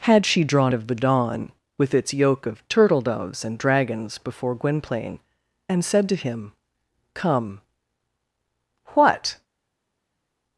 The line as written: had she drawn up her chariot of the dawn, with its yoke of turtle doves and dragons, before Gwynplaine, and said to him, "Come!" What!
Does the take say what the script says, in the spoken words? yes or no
no